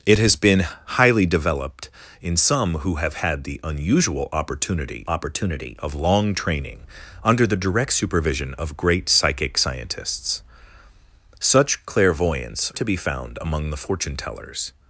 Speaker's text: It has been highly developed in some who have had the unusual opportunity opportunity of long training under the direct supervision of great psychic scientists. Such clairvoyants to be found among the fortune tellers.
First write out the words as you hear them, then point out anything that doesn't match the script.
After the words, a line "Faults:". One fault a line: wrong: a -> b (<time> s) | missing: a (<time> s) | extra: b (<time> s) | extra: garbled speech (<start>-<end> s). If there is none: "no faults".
It has been highly developed in some who have had the unusual opportunity opportunity of long training under the direct supervision of great psychic scientists. Such clairvoyants to be found among the fortune tellers.
Faults:
no faults